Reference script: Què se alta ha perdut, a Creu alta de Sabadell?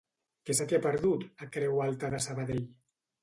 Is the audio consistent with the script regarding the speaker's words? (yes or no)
no